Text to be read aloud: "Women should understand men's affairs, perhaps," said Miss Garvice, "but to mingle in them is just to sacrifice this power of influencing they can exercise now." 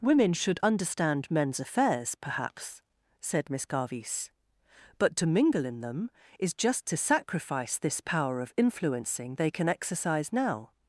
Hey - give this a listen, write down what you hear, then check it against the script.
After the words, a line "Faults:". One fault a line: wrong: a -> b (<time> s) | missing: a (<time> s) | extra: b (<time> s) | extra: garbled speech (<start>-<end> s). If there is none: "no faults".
"Women should understand men's affairs, perhaps," said Miss Garvice, "but to mingle in them is just to sacrifice this power of influencing they can exercise now."
Faults:
no faults